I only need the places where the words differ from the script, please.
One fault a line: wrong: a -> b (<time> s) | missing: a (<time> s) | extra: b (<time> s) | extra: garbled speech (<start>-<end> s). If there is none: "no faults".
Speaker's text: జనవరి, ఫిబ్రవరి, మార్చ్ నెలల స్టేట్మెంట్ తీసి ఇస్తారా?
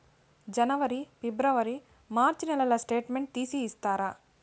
no faults